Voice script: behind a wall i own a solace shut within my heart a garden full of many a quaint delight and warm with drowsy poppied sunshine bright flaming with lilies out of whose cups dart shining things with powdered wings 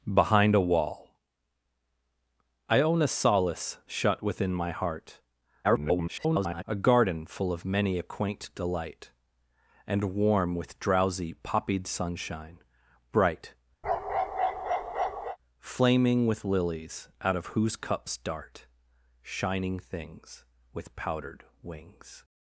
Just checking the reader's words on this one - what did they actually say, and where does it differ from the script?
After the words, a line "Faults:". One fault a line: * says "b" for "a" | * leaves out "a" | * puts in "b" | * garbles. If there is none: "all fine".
behind a wall i own a solace shut within my heart [garbled] a garden full of many a quaint delight and warm with drowsy poppied sunshine bright flaming with lilies out of whose cups dart shining things with powdered wings
Faults:
* garbles